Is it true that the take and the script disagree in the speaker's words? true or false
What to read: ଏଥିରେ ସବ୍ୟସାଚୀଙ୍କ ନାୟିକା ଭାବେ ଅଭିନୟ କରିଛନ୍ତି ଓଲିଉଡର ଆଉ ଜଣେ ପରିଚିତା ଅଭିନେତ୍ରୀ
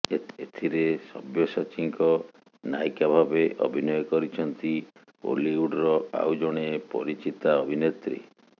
false